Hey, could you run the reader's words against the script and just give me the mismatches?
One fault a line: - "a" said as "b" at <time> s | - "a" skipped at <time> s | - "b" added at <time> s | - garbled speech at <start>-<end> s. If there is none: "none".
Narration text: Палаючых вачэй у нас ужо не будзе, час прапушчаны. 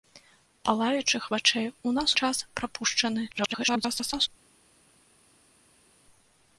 - "ужо не будзе" skipped at 2.1 s
- garbled speech at 3.3-4.3 s